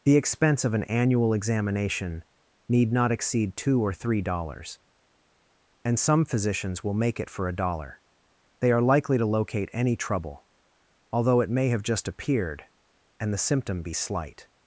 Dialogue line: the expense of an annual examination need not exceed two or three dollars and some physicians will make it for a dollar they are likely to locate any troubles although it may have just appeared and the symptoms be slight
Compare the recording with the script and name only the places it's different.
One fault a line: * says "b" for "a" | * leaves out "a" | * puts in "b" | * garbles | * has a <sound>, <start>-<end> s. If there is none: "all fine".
* says "trouble" for "troubles"
* says "symptom" for "symptoms"